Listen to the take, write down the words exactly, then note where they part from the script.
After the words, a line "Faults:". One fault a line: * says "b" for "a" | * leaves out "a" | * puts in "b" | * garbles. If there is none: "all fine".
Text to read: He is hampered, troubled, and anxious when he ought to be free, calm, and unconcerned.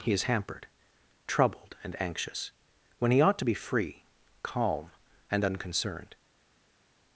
He is hampered, troubled, and anxious when he ought to be free, calm, and unconcerned.
Faults:
all fine